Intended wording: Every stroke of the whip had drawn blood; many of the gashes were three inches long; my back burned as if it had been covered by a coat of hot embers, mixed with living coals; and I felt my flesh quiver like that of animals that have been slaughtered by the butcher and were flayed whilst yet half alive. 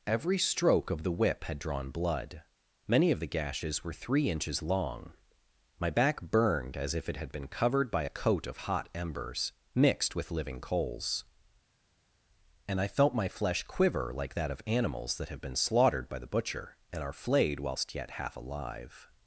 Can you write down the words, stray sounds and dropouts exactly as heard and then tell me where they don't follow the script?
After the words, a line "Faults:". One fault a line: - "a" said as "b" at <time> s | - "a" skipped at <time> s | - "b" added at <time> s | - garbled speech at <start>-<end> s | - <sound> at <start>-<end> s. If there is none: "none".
Every stroke of the whip had drawn blood; many of the gashes were three inches long; my back burned as if it had been covered by a coat of hot embers, mixed with living coals; and I felt my flesh quiver like that of animals that have been slaughtered by the butcher and are flayed whilst yet half alive.
Faults:
- "were" said as "are" at 17.0 s